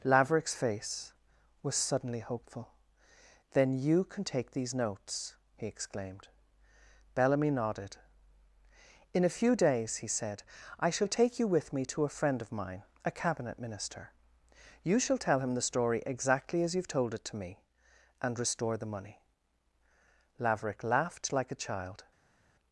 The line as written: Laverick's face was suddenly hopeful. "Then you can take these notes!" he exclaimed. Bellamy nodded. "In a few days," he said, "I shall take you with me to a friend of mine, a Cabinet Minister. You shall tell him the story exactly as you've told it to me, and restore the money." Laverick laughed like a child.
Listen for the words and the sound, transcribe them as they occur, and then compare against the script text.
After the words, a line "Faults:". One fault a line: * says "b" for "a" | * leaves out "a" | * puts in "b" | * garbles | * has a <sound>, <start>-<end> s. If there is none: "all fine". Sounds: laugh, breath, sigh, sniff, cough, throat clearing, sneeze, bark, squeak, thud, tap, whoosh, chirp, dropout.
Laverick's face was suddenly hopeful. "Then you can take these notes!" he exclaimed. Bellamy nodded. "In a few days," he said, "I shall take you with me to a friend of mine, a Cabinet Minister. You shall tell him the story exactly as you've told it to me, and restore the money." Laverick laughed like a child.
Faults:
all fine